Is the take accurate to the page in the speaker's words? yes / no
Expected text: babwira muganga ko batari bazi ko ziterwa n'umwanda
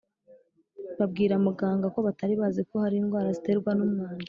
no